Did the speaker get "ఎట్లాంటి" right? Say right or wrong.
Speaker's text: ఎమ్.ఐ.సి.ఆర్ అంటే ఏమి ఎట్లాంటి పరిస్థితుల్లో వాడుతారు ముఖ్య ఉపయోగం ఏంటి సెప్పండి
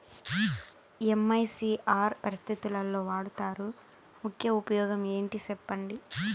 wrong